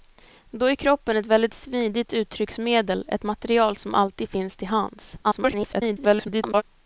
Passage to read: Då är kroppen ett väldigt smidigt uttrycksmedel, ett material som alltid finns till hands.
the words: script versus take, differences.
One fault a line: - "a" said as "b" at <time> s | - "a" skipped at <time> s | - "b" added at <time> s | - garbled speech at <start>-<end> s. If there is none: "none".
- garbled speech at 5.2-6.6 s